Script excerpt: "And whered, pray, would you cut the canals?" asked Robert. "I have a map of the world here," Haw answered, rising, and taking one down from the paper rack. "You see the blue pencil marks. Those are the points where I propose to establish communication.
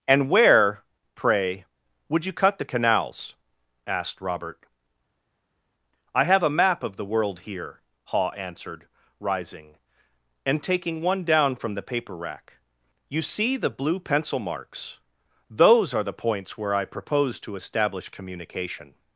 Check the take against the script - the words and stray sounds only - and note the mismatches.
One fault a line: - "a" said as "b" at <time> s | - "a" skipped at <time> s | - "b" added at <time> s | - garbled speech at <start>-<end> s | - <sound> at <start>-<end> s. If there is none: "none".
- "whered" said as "where" at 0.3 s